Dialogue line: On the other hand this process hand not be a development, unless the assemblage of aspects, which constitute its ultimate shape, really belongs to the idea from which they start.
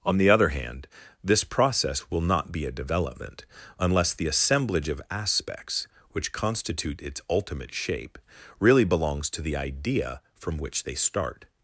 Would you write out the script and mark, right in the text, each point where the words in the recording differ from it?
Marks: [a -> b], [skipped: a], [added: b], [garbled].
On the other hand this process [hand -> will] not be a development, unless the assemblage of aspects, which constitute its ultimate shape, really belongs to the idea from which they start.